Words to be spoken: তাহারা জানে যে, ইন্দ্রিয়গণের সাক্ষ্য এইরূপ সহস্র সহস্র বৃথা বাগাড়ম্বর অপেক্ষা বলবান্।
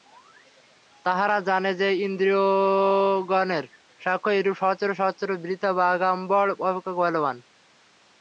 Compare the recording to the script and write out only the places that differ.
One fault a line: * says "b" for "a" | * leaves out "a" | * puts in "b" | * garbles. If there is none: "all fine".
all fine